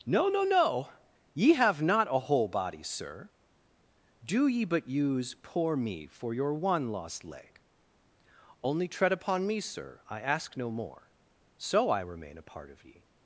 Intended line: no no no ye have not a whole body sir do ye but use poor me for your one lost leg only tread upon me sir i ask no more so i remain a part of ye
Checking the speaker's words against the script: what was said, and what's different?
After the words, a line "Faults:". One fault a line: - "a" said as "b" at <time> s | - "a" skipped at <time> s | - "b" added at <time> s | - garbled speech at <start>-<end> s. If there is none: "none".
no no no ye have not a whole body sir do ye but use poor me for your one lost leg only tread upon me sir i ask no more so i remain a part of ye
Faults:
none